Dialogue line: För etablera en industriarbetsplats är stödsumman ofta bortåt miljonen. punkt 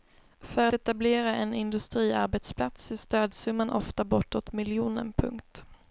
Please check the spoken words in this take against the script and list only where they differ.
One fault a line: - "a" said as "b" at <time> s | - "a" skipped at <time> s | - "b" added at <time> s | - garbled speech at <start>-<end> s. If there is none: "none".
none